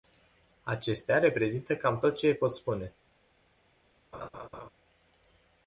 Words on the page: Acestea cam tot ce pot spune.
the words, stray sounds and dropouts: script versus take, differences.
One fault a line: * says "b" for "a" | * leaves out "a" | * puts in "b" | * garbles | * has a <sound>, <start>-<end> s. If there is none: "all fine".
* puts in "reprezintă"
* has a laugh, 4.1-4.7 s